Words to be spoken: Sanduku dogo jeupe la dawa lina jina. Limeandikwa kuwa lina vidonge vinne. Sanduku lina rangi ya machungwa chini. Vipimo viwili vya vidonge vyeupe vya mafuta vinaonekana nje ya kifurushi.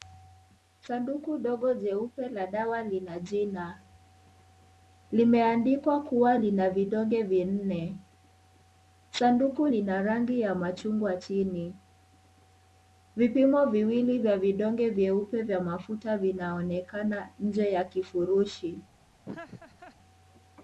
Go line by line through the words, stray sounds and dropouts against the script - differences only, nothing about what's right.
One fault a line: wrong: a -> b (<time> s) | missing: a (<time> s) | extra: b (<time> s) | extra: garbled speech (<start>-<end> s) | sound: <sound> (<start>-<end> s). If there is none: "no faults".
sound: laugh (19.2-20.0 s)